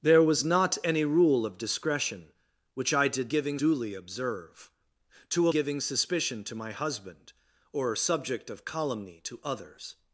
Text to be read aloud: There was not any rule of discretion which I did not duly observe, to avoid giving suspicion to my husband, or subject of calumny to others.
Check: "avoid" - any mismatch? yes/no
yes